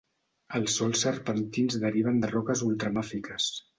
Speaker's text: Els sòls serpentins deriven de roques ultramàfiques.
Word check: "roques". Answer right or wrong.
right